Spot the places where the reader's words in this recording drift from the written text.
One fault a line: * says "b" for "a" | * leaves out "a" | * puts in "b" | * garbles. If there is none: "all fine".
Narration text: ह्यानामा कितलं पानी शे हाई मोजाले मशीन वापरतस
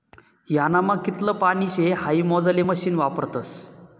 all fine